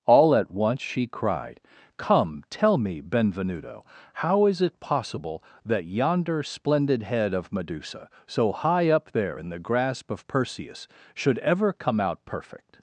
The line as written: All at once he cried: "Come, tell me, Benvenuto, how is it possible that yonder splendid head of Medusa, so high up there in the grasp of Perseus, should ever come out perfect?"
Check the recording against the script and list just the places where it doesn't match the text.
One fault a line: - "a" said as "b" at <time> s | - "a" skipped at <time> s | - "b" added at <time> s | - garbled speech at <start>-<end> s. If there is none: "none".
- "he" said as "she" at 0.8 s